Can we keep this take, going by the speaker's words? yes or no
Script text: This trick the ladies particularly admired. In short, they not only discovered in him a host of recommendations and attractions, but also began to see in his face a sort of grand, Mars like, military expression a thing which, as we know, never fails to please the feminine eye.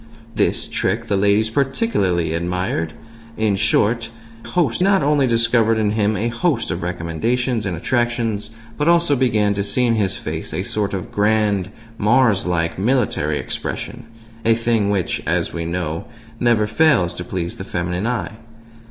no